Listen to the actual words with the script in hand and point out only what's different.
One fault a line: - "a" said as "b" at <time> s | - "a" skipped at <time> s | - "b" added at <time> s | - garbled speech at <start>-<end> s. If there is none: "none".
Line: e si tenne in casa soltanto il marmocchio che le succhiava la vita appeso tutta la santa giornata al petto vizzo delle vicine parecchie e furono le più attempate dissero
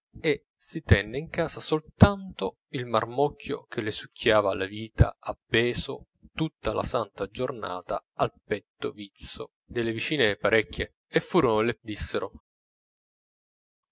- "più attempate" skipped at 11.8 s